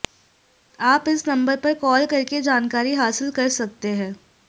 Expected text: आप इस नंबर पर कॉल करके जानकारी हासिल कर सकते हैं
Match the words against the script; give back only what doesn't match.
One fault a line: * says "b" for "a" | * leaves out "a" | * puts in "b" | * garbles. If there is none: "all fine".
all fine